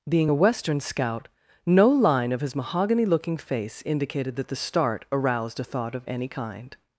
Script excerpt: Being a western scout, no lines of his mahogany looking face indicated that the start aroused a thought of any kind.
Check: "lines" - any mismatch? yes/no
yes